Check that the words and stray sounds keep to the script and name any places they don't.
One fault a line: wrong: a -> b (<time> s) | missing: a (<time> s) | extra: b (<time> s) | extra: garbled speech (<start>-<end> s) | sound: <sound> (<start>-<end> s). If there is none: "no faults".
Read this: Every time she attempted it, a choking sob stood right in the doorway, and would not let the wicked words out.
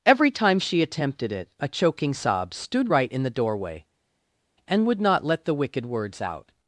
no faults